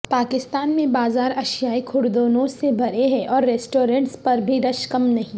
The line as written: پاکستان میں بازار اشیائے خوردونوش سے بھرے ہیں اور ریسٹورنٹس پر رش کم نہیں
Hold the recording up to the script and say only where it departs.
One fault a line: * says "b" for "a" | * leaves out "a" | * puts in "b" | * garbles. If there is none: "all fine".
* puts in "بھی"